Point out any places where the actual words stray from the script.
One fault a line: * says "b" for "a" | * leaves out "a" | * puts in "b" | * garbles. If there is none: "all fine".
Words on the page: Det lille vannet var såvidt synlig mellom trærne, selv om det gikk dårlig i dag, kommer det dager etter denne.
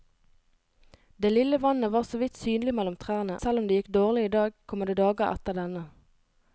all fine